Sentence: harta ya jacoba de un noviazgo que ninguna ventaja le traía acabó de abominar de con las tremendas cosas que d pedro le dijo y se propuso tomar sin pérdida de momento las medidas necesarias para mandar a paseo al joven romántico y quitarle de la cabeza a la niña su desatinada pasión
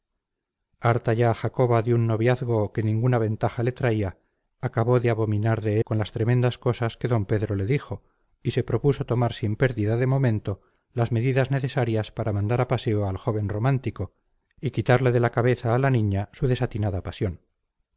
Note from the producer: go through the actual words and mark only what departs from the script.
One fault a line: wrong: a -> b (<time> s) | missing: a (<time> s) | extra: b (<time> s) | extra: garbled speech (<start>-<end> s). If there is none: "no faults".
no faults